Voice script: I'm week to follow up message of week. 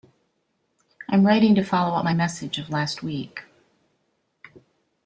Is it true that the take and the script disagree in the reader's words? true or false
true